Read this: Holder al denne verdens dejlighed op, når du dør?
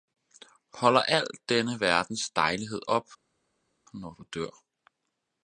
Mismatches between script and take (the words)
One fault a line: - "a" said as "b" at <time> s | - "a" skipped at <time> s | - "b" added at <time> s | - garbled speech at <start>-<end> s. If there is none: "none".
none